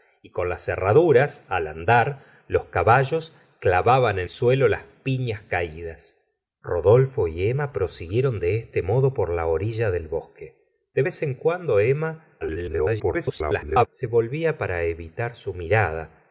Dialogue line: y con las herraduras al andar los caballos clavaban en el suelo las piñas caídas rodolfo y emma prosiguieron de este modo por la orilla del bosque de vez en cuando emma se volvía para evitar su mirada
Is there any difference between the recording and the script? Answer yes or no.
yes